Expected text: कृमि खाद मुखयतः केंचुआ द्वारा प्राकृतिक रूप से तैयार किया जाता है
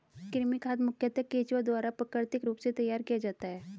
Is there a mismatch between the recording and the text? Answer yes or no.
no